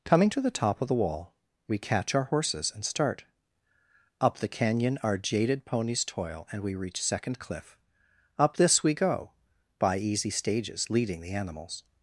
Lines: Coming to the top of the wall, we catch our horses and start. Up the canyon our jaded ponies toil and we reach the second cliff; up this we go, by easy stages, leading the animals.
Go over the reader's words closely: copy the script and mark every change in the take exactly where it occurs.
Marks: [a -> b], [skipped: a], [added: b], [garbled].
Coming to the top of the wall, we catch our horses and start. Up the canyon our jaded ponies toil and we reach [skipped: the] second cliff; up this we go, by easy stages, leading the animals.